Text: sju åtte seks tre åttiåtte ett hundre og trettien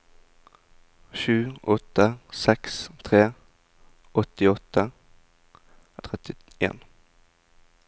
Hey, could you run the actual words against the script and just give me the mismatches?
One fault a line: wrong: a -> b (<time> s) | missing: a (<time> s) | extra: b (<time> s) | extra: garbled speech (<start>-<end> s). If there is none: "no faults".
missing: ett hundre (4.9 s)